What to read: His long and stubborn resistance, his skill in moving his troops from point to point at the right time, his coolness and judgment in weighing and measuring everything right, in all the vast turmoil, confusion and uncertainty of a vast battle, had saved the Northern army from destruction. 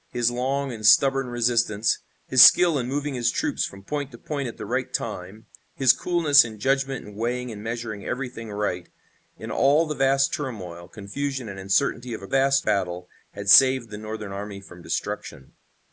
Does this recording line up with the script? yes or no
yes